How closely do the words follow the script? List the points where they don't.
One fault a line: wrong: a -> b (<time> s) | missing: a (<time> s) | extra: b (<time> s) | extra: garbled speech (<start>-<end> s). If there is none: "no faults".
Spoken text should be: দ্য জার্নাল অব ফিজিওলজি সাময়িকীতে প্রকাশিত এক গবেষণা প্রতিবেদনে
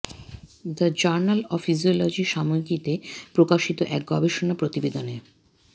no faults